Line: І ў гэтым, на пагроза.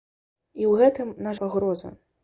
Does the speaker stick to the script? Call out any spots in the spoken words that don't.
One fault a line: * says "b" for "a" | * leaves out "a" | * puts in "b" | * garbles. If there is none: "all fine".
all fine